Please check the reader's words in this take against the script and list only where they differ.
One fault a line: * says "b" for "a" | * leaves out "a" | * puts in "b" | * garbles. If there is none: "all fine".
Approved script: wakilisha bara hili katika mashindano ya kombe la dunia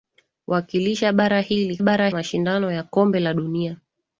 * says "bara" for "katika"